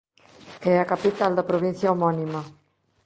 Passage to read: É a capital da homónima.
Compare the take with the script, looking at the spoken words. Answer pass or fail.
fail